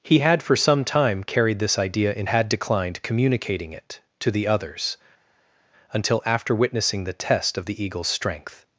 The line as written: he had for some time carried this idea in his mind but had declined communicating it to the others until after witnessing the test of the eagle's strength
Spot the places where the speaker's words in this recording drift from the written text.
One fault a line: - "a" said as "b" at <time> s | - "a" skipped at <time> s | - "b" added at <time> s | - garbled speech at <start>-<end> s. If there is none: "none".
- "his mind but" skipped at 2.3 s